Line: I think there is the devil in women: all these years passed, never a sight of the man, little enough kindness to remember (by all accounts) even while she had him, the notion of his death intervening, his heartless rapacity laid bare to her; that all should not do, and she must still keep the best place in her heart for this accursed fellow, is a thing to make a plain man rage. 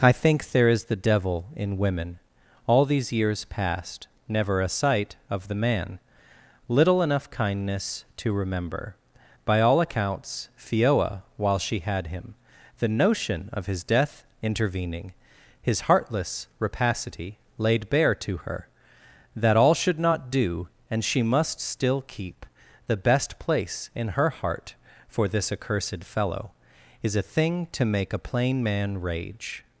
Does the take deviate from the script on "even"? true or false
true